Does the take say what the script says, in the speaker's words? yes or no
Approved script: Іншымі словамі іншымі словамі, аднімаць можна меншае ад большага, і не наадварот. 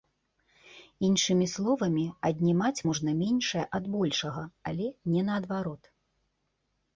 no